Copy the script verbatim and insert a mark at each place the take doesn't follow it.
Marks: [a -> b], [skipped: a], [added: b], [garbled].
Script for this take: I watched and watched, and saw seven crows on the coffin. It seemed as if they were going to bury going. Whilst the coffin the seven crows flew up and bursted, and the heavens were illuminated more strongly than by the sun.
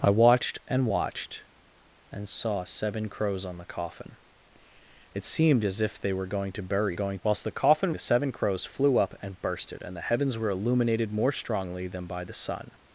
I watched and watched, and saw seven crows on the coffin. It seemed as if they were going to bury going. Whilst the coffin the seven crows flew up and bursted, and the heavens were illuminated more strongly than by the sun.